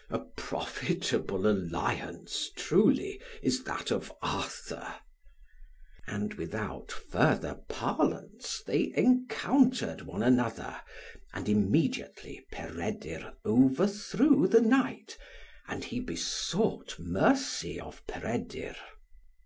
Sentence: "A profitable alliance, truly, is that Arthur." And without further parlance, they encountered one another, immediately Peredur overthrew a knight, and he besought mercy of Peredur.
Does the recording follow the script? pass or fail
fail